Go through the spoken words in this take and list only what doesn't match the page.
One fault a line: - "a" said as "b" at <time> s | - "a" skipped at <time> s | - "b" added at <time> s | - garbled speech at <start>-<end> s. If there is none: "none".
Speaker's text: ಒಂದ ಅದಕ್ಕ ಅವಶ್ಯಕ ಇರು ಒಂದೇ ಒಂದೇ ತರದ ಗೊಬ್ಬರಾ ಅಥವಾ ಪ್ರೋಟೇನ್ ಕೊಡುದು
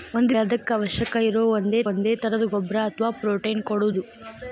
none